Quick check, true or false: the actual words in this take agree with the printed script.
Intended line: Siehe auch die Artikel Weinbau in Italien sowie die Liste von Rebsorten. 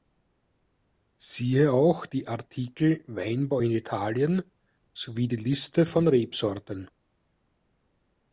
true